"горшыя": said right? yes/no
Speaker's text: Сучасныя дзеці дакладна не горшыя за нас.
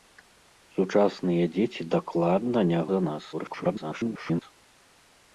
no